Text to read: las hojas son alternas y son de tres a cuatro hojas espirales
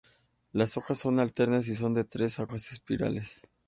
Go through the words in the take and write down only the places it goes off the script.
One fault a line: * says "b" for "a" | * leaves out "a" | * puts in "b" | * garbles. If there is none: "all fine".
* leaves out "cuatro"